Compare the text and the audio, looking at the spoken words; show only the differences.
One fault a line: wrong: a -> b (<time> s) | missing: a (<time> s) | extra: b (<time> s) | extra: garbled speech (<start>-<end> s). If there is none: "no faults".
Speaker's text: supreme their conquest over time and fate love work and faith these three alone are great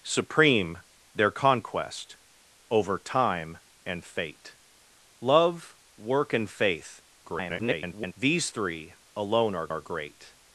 extra: garbled speech (7.2-8.1 s)
extra: are (9.7 s)